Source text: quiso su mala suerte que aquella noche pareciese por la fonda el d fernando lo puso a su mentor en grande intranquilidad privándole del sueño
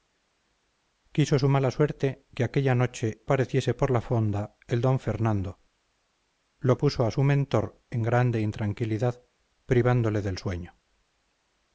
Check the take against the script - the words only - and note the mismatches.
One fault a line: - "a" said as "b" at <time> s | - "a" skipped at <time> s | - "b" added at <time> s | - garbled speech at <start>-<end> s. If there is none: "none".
none